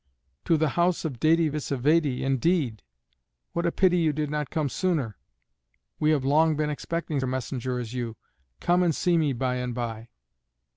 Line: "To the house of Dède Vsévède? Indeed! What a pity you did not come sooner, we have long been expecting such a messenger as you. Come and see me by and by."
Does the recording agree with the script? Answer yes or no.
no